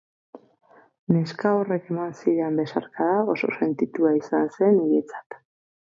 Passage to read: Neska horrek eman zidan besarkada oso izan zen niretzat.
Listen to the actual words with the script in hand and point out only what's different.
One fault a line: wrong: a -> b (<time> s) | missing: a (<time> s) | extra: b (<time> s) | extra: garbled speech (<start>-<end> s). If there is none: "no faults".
extra: sentitua (3.6 s)